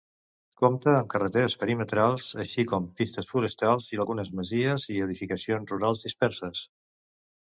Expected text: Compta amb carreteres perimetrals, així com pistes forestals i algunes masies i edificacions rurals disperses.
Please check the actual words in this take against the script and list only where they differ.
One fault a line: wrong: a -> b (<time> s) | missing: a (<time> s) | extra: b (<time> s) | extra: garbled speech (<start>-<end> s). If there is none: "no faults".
no faults